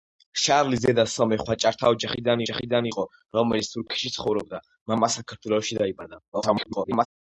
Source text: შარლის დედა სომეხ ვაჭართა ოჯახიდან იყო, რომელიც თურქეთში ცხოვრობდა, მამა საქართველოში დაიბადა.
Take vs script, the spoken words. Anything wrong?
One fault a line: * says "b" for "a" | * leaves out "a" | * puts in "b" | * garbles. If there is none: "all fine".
* puts in "ოჯახიდან"
* garbles